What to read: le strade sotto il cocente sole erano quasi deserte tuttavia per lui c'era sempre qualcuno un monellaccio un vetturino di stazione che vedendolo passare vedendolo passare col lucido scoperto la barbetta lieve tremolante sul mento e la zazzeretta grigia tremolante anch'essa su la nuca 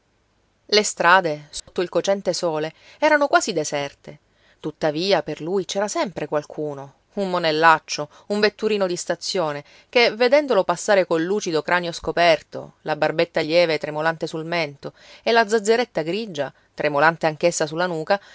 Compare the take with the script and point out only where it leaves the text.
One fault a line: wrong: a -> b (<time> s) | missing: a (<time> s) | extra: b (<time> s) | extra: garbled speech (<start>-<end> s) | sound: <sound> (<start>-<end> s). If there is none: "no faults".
sound: dropout (1.6-1.7 s)
missing: vedendolo passare (11.0 s)
extra: cranio (11.6 s)